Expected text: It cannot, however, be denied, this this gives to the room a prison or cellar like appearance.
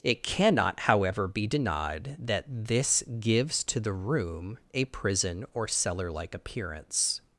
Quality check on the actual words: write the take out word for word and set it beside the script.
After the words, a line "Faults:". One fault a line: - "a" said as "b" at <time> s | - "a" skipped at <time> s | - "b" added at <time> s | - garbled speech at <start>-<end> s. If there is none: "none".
It cannot, however, be denied, that this gives to the room a prison or cellar like appearance.
Faults:
- "this" said as "that" at 2.2 s